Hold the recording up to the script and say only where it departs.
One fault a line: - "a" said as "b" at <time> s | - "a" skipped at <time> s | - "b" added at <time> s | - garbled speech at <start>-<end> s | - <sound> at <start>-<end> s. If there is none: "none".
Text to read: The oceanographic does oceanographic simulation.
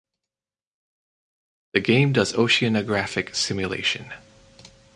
- "oceanographic" said as "game" at 1.8 s